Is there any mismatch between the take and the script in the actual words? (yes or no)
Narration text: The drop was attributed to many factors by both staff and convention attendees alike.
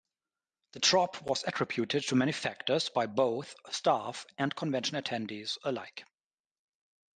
no